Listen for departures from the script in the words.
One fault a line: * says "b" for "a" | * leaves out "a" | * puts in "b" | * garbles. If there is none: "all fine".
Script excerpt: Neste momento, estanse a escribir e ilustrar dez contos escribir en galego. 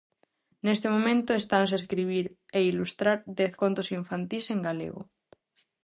* says "infantís" for "escribir"